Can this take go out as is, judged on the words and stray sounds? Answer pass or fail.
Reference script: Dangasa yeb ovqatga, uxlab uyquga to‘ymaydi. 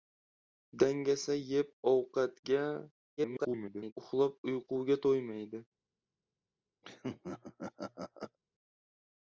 fail